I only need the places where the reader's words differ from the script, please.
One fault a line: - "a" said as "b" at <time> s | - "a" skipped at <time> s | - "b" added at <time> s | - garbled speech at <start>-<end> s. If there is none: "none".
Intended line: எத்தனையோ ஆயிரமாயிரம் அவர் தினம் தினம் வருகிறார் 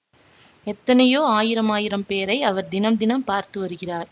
- "பேரை" added at 2.1 s
- "பார்த்து" added at 3.3 s